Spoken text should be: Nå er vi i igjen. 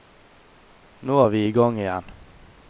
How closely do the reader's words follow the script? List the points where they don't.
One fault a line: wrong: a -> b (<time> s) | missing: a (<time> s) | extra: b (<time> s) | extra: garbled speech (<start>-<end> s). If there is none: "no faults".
extra: gang (1.5 s)